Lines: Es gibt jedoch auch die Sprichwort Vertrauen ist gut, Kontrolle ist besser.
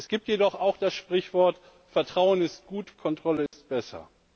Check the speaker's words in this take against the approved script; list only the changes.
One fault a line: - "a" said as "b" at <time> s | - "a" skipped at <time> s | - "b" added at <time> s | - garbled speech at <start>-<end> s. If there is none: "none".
- "die" said as "das" at 0.8 s